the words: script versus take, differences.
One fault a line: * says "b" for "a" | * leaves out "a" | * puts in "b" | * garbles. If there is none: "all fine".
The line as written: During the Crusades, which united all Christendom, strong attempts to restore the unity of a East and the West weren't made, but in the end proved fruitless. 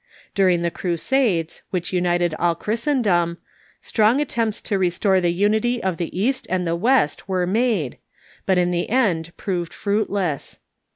* says "the" for "a"
* says "were" for "weren't"